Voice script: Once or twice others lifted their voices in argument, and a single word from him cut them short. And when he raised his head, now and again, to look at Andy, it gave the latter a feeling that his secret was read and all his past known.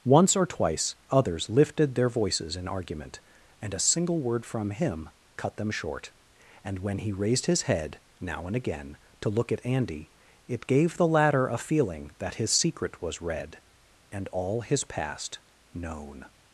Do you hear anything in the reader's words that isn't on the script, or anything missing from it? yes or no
no